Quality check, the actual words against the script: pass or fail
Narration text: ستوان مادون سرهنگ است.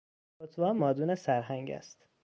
pass